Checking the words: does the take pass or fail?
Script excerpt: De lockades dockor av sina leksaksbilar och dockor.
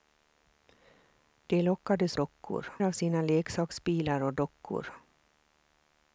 pass